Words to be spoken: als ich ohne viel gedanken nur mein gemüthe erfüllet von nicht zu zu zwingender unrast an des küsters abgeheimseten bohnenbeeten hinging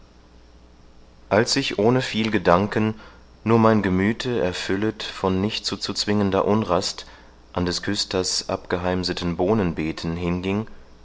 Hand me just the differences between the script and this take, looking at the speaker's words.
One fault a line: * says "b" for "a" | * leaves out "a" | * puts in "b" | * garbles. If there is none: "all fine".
all fine